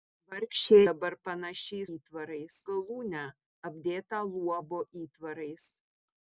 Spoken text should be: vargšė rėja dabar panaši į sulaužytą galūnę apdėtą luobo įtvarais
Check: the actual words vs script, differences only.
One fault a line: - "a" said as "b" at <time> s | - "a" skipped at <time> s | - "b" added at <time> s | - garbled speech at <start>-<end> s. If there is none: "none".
- "rėja" skipped at 0.8 s
- "sulaužytą" said as "įtvarais" at 2.0 s